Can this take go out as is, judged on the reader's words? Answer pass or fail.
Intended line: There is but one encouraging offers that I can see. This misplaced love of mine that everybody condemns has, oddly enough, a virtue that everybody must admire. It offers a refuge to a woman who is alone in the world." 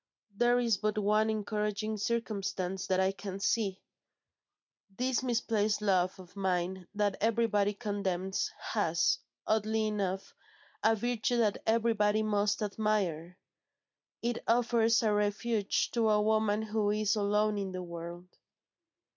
fail